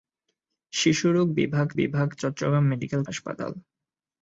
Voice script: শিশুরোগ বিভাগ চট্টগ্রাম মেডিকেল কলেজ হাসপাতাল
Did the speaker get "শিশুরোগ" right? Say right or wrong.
right